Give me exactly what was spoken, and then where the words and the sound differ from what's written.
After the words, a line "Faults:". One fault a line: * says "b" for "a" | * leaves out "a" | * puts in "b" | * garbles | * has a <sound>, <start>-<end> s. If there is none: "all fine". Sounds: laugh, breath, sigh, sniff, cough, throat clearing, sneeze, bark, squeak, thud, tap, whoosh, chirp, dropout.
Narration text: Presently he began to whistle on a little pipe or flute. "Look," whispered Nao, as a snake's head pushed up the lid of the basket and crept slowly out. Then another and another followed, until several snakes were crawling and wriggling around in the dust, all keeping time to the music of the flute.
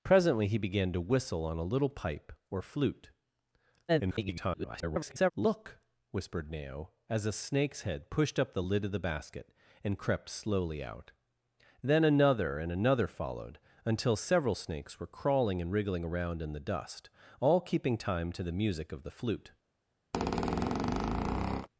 Presently he began to whistle on a little pipe or flute. [garbled] "Look," whispered Nao, as a snake's head pushed up the lid of the basket and crept slowly out. Then another and another followed, until several snakes were crawling and wriggling around in the dust, all keeping time to the music of the flute.
Faults:
* garbles
* has a squeak, 20.1-21.7 s